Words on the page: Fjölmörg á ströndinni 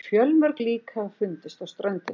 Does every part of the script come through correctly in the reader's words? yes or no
no